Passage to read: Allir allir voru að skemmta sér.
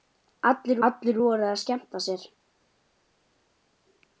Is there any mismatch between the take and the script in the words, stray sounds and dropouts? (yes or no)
no